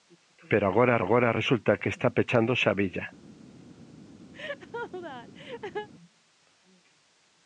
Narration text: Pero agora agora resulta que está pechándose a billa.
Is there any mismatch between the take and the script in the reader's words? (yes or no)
no